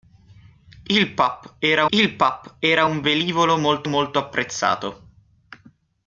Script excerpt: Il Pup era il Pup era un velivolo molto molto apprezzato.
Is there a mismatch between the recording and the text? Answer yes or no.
no